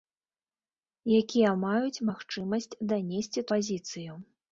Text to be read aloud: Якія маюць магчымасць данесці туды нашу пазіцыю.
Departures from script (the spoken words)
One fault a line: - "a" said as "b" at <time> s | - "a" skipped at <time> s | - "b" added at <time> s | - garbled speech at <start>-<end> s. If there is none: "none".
- "туды нашу" skipped at 3.5 s